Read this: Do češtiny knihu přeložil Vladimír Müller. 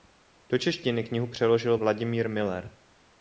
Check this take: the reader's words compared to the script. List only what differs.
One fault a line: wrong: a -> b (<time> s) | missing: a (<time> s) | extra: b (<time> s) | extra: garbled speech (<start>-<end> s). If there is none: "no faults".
no faults